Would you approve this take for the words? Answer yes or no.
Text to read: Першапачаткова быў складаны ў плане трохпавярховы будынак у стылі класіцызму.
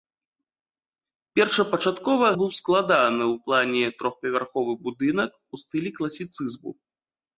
yes